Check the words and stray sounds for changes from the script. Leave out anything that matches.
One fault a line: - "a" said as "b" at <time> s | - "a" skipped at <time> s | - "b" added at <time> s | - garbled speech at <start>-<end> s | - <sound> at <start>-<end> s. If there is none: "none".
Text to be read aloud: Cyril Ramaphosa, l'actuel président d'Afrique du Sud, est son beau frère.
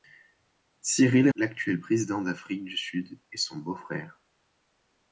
- "Ramaphosa" skipped at 1.3 s